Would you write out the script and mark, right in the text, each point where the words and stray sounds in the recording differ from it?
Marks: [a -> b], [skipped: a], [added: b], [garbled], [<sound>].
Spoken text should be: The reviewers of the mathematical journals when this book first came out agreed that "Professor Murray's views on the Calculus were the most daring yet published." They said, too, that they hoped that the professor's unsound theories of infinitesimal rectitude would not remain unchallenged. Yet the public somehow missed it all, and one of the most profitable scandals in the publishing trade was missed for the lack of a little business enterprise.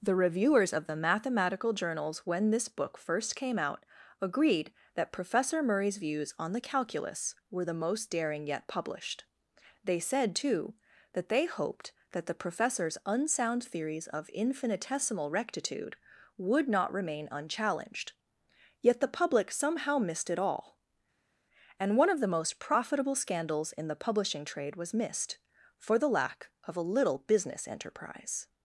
The reviewers of the mathematical journals when this book first came out agreed that "Professor Murray's views on the Calculus were the most daring yet published." They said, too, that they hoped that the professor's unsound theories of infinitesimal rectitude would not remain unchallenged. Yet the public somehow missed it all, and one of the most profitable scandals in the publishing trade was missed for the lack of a little business enterprise.